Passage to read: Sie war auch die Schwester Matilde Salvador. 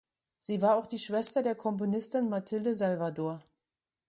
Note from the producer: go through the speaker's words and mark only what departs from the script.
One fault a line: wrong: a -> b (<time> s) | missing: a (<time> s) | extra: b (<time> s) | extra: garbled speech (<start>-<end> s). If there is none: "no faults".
extra: der Komponistin (1.4 s)